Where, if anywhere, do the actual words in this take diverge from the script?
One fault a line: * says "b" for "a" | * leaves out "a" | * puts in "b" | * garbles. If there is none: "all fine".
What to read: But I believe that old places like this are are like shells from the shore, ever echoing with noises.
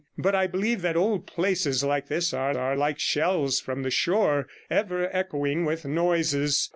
all fine